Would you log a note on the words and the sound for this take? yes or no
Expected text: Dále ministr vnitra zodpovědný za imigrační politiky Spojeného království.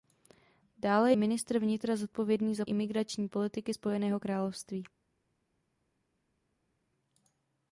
no